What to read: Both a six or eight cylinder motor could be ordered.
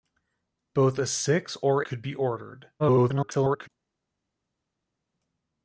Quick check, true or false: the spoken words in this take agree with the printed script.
false